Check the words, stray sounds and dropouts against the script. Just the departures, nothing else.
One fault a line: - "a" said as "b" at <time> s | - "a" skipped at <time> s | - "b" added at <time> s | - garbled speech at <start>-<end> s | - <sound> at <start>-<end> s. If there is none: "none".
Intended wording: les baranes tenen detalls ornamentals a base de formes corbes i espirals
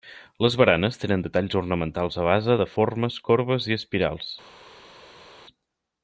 none